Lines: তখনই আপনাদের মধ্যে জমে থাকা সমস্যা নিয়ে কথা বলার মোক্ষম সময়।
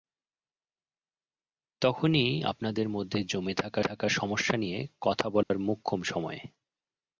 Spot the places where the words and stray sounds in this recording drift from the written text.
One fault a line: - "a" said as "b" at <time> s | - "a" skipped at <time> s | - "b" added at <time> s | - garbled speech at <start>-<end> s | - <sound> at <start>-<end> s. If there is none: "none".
- "থাকা" added at 3.8 s
- dropout at 5.4-5.5 s